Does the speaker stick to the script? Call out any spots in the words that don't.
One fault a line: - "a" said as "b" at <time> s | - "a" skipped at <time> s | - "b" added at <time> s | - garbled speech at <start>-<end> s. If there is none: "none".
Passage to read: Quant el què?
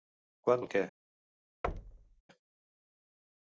none